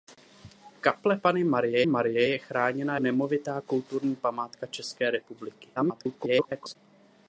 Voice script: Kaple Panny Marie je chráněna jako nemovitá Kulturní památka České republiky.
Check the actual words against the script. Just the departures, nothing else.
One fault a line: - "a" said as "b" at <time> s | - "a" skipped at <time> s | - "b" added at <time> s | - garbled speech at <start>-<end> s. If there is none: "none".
- "Marie" added at 1.8 s
- "jako" skipped at 3.0 s
- garbled speech at 5.8-6.8 s